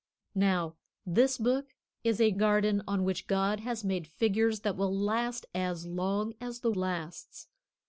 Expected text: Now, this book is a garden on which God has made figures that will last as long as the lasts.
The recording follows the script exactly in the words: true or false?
true